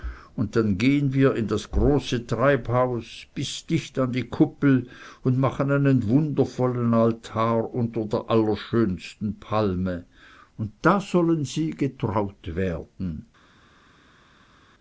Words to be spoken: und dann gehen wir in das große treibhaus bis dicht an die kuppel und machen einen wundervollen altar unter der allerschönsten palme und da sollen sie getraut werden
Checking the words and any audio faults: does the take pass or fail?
pass